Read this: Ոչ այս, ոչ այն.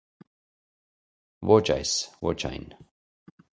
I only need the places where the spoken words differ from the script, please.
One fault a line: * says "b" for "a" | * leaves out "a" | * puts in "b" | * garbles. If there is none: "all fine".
all fine